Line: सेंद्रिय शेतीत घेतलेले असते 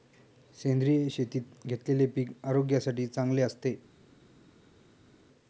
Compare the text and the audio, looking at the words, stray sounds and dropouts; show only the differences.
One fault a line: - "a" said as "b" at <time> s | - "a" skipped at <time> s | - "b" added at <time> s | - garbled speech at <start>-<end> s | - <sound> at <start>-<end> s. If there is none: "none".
- "पीक आरोग्यासाठी चांगले" added at 2.1 s